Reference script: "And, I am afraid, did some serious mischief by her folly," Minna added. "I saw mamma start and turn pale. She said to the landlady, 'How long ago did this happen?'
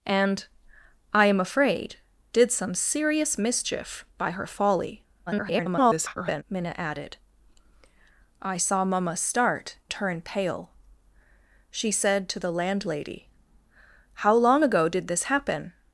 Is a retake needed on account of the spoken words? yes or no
yes